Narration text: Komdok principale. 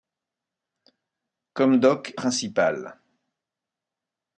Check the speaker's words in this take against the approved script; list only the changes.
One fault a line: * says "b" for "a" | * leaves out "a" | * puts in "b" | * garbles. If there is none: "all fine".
all fine